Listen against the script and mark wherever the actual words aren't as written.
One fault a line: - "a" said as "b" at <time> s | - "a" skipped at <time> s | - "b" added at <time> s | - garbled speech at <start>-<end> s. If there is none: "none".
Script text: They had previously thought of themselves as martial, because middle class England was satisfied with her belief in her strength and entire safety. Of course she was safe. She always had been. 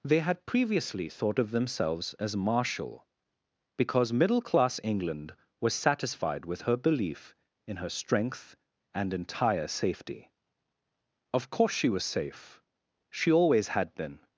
none